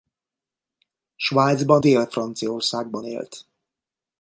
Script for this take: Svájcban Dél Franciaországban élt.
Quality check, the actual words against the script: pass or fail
pass